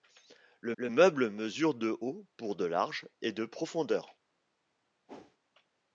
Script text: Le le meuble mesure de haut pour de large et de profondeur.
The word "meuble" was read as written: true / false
true